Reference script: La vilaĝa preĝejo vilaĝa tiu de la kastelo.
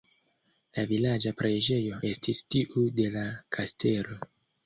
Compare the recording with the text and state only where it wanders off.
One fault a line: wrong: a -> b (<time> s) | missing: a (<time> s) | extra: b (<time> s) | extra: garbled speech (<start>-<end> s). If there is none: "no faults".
wrong: vilaĝa -> estis (2.1 s)